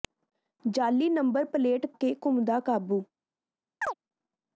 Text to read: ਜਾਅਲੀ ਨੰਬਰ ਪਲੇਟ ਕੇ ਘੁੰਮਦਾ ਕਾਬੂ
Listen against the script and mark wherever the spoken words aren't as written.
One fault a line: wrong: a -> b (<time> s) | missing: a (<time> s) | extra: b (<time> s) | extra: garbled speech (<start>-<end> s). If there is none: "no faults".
no faults